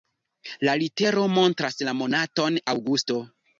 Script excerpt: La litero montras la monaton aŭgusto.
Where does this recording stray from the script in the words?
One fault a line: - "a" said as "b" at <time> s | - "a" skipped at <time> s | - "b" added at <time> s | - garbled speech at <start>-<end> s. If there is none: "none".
none